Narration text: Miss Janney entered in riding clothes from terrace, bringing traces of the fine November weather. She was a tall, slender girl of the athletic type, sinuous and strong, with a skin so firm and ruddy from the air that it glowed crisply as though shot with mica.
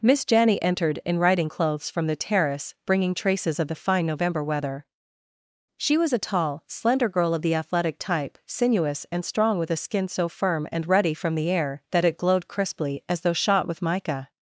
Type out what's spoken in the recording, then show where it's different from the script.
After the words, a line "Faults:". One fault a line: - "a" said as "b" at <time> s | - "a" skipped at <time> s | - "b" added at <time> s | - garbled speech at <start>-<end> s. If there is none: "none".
Miss Janney entered in riding clothes from the terrace, bringing traces of the fine November weather. She was a tall, slender girl of the athletic type, sinuous and strong, with a skin so firm and ruddy from the air that it glowed crisply as though shot with mica.
Faults:
- "the" added at 2.1 s